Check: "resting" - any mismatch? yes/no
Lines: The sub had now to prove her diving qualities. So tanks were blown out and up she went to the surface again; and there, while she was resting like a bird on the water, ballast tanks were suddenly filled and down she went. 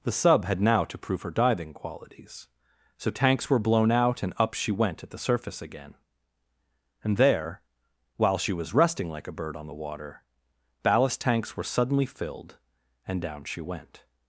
no